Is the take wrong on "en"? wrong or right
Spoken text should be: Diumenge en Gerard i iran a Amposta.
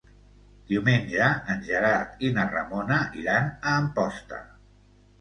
right